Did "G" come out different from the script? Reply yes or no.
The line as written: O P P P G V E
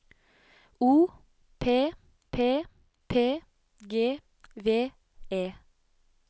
no